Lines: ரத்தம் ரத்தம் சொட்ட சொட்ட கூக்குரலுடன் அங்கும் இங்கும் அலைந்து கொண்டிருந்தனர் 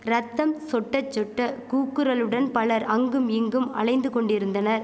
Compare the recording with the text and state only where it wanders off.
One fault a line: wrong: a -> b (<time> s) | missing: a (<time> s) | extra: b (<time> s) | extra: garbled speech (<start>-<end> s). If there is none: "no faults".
missing: ரத்தம் (0.5 s)
extra: பலர் (2.5 s)